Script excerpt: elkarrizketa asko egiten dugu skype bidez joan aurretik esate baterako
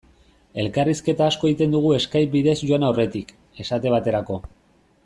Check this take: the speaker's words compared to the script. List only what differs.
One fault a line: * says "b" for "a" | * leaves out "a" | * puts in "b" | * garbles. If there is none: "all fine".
all fine